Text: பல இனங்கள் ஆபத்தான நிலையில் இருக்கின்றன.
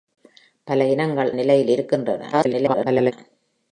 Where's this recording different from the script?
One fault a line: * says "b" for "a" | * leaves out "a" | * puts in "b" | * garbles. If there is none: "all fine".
* leaves out "ஆபத்தான"
* garbles